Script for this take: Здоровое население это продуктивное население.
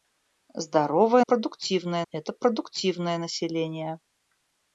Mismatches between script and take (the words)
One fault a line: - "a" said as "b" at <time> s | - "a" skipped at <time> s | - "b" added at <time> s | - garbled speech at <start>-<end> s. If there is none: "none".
- "население" said as "продуктивное" at 1.2 s